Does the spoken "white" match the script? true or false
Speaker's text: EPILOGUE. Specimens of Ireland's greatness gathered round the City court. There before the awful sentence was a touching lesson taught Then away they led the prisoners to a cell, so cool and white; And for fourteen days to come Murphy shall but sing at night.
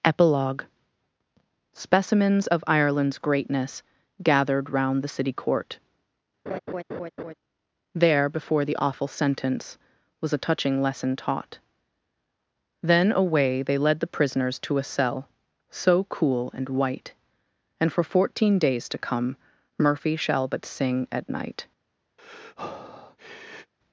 true